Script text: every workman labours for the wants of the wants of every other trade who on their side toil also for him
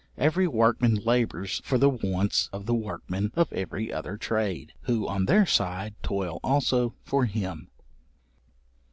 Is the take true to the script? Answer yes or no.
no